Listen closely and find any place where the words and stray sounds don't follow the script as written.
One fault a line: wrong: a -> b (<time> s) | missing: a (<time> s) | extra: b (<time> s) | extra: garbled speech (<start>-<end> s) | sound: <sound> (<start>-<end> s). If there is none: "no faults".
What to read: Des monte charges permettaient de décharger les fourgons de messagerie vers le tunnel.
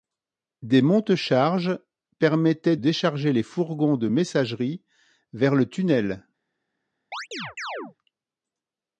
missing: de (2.8 s)
sound: chirp (7.1-8.0 s)